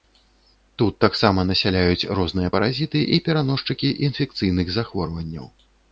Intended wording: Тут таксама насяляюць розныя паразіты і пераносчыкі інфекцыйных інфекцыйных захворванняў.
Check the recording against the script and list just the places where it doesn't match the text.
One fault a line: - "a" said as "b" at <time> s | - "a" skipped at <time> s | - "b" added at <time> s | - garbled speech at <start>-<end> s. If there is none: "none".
- "інфекцыйных" skipped at 4.7 s